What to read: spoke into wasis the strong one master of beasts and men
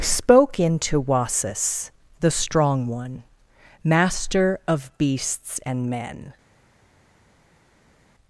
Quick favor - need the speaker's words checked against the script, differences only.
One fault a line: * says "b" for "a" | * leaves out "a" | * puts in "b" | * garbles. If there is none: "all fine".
all fine